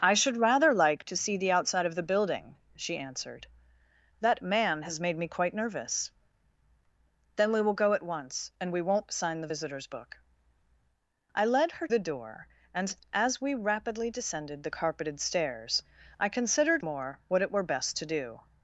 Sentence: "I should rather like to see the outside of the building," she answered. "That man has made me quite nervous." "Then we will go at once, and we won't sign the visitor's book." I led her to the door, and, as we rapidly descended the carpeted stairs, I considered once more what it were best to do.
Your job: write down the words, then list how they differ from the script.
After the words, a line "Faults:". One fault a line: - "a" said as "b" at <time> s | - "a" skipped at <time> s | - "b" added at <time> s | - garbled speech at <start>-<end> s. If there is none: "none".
"I should rather like to see the outside of the building," she answered. "That man has made me quite nervous." "Then we will go at once, and we won't sign the visitor's book." I led her the door, and, as we rapidly descended the carpeted stairs, I considered more what it were best to do.
Faults:
- "to" skipped at 11.9 s
- "once" skipped at 16.8 s